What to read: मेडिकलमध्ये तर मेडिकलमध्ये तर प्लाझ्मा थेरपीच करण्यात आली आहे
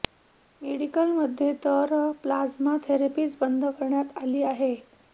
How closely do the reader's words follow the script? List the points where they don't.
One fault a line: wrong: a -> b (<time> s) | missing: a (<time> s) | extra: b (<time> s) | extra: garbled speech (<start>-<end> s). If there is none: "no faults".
missing: मेडिकलमध्ये तर (1.9 s)
extra: बंद (3.4 s)